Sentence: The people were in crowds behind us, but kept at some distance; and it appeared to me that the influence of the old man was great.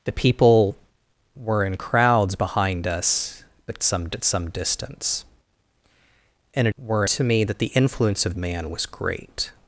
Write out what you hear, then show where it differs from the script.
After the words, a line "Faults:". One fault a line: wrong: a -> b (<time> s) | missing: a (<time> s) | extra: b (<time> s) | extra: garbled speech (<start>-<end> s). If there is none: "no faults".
The people were in crowds behind us, but some at some distance; and it were to me that the influence of man was great.
Faults:
wrong: kept -> some (3.8 s)
wrong: appeared -> were (6.8 s)
missing: the old (8.3 s)